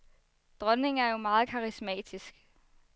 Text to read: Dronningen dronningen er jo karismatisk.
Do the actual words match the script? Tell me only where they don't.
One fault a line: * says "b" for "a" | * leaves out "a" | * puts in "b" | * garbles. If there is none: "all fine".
* leaves out "dronningen"
* puts in "meget"